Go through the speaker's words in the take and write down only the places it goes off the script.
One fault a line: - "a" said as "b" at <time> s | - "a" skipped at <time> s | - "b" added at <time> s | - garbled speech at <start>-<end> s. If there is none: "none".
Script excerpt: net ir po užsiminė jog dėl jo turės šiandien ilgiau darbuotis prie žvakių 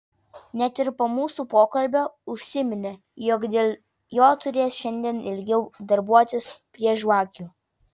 - "mūsų pokalbio" added at 1.1 s